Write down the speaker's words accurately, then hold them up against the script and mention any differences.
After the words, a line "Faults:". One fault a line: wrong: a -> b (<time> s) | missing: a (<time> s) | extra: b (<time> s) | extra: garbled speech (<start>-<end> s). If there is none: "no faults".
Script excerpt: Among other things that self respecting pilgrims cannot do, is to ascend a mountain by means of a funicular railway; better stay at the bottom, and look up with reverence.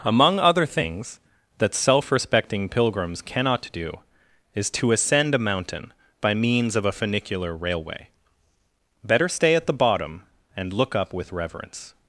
Among other things that self respecting pilgrims cannot do, is to ascend a mountain by means of a funicular railway; better stay at the bottom, and look up with reverence.
Faults:
no faults